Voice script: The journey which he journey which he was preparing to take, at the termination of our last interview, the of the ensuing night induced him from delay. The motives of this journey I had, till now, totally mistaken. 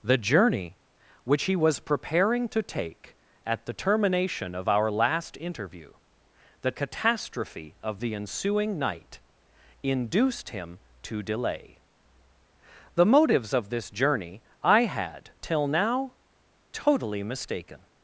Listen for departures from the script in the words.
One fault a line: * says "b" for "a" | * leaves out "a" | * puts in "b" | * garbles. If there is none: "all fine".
* leaves out "journey which he"
* puts in "catastrophe"
* says "to" for "from"